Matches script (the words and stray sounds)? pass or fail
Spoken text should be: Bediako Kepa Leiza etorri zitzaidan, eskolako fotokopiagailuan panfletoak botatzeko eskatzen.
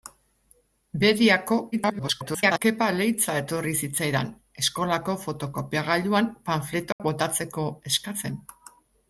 fail